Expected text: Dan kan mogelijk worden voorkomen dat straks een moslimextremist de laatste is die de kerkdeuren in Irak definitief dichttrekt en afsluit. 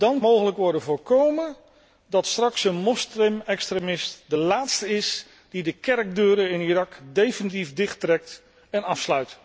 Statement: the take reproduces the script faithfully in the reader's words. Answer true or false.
false